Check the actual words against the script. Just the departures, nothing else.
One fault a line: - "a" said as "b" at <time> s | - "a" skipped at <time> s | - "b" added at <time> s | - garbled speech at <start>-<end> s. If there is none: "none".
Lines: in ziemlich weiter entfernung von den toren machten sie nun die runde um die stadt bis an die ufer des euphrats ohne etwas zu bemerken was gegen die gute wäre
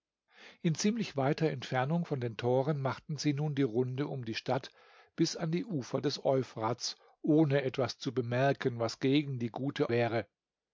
none